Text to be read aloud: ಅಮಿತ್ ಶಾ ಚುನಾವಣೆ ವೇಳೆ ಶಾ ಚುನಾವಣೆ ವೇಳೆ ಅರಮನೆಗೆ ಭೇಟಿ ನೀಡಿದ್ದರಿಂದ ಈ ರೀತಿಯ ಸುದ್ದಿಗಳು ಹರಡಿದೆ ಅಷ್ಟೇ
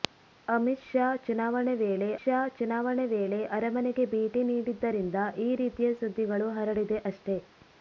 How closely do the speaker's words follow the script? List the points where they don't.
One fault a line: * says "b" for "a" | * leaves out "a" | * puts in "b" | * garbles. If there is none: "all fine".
all fine